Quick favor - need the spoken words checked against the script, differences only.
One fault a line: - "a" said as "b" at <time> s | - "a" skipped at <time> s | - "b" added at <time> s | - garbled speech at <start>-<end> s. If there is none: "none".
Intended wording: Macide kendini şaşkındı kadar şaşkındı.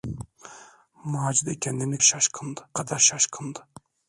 none